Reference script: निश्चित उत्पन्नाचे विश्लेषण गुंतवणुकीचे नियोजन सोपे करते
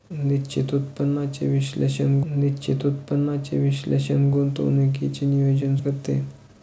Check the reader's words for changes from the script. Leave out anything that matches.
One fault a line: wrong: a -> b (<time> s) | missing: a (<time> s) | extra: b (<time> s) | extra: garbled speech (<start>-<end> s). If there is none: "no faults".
extra: निश्चित उत्पन्नाचे विश्लेषण (2.3 s)
missing: सोपे (5.8 s)